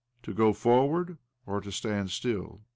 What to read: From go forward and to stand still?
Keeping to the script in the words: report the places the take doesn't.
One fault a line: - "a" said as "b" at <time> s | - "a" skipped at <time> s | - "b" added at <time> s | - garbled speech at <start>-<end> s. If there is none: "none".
- "From" said as "To" at 0.2 s
- "and" said as "or" at 1.5 s